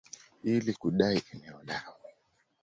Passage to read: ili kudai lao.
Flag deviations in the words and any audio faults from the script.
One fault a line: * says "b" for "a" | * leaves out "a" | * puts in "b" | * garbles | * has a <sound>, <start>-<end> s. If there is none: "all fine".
* puts in "eneo"